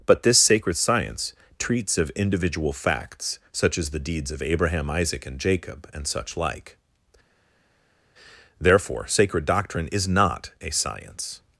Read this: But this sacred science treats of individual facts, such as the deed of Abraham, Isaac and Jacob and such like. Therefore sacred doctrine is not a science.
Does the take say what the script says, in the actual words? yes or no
no